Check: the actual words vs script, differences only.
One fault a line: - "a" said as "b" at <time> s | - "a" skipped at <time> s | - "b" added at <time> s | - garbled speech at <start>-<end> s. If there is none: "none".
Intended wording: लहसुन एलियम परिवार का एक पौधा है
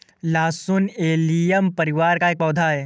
none